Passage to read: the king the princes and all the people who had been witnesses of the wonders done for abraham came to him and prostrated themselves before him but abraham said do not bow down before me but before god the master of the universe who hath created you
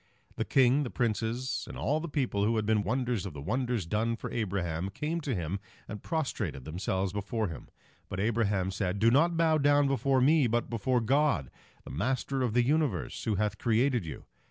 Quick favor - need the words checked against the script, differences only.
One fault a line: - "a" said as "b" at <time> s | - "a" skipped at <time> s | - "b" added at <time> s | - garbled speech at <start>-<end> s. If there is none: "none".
- "witnesses" said as "wonders" at 2.8 s